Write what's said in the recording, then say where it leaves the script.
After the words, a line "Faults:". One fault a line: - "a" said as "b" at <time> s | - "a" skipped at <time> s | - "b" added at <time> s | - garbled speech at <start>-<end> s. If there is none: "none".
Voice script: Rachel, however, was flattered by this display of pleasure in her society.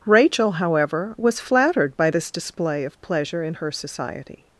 Rachel, however, was flattered by this display of pleasure in her society.
Faults:
none